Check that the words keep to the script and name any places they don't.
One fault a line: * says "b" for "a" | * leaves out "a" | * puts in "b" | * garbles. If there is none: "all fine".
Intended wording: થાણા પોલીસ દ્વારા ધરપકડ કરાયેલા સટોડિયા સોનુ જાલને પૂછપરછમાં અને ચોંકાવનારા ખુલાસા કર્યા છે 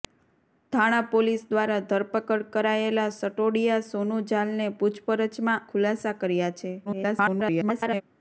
* leaves out "અને ચોંકાવનારા"
* garbles